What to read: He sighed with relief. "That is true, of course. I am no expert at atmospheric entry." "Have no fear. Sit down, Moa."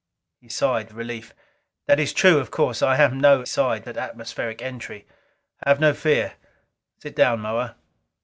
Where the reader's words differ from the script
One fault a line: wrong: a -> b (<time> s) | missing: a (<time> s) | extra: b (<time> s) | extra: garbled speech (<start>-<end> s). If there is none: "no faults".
missing: with (0.9 s)
wrong: expert -> sighed (3.4 s)